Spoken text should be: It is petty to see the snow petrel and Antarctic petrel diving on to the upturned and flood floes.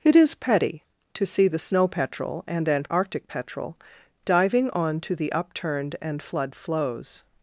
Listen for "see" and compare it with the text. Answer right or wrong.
right